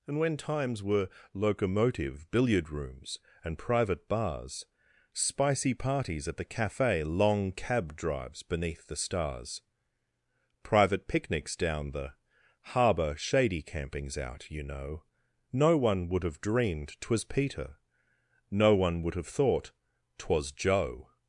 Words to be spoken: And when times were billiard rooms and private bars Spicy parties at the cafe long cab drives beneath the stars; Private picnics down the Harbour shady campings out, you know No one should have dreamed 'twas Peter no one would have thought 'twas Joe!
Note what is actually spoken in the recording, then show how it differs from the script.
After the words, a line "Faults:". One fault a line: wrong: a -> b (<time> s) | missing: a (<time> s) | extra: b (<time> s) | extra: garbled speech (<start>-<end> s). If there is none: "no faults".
And when times were locomotive, billiard rooms and private bars Spicy parties at the cafe long cab drives beneath the stars; Private picnics down the Harbour shady campings out, you know No one would have dreamed 'twas Peter no one would have thought 'twas Joe!
Faults:
extra: locomotive (1.3 s)
wrong: should -> would (16.1 s)